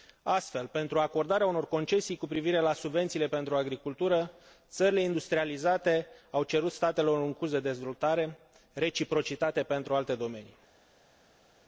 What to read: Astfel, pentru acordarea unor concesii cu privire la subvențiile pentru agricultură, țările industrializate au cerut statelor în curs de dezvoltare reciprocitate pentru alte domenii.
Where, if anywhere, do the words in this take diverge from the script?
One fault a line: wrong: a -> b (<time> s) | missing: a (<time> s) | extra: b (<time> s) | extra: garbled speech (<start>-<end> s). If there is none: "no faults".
no faults